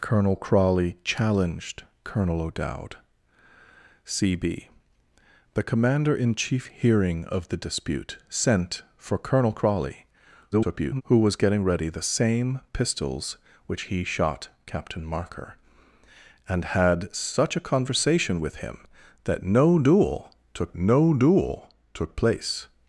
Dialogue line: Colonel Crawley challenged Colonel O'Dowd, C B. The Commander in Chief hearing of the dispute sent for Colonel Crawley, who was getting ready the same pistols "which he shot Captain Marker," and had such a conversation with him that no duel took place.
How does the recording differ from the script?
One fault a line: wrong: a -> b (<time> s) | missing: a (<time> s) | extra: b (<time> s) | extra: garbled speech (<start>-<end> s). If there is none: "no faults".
extra: garbled speech (10.5-11.0 s)
extra: no duel took (20.8 s)